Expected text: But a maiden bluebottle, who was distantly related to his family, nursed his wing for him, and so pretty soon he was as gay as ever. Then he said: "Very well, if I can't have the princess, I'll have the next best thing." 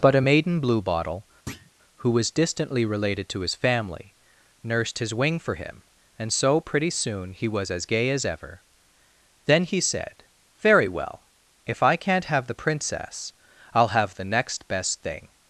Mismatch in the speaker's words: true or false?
false